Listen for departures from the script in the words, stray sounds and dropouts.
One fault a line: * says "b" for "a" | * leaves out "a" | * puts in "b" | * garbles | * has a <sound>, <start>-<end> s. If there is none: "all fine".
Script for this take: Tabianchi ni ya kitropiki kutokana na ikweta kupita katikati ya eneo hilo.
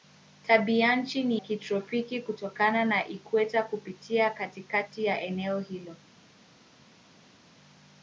* leaves out "ya"